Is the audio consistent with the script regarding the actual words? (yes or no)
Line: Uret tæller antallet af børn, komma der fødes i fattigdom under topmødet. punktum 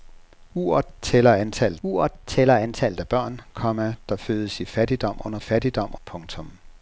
no